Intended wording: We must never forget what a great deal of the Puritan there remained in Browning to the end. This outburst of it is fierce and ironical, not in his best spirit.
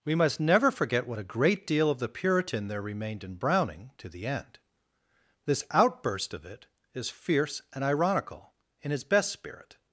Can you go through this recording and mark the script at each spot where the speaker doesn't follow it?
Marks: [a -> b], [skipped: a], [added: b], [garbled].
We must never forget what a great deal of the Puritan there remained in Browning to the end. This outburst of it is fierce and ironical, [skipped: not] in his best spirit.